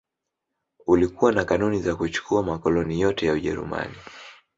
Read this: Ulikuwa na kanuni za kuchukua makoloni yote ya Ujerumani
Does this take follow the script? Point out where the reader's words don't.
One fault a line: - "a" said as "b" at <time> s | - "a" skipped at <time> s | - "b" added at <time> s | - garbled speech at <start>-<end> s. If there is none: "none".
none